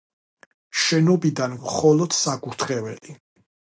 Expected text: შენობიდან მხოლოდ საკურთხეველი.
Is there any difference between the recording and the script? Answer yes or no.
no